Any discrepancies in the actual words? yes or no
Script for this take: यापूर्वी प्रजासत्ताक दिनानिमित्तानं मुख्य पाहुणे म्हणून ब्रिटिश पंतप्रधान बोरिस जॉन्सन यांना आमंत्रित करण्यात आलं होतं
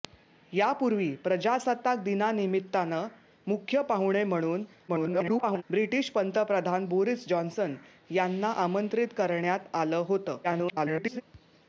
yes